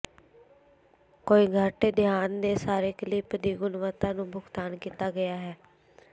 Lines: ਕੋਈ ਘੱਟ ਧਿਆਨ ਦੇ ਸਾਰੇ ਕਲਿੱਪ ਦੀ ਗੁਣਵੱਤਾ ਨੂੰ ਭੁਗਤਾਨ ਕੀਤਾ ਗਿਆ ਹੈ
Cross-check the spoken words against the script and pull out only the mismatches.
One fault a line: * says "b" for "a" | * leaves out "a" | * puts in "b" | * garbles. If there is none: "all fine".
all fine